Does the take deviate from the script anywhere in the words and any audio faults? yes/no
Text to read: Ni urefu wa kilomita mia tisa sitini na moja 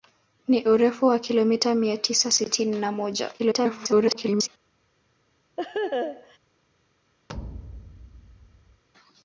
yes